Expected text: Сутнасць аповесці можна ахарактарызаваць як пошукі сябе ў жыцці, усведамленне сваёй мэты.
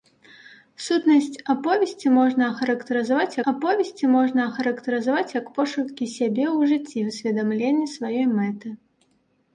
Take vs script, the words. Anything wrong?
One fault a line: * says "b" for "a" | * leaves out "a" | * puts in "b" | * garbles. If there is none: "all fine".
* puts in "аповесці можна ахарактарызаваць"